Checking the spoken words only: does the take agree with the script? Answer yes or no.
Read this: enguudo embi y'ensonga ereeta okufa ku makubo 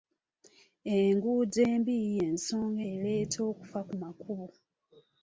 yes